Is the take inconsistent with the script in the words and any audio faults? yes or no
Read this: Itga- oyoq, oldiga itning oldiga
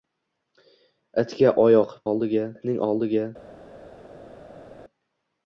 no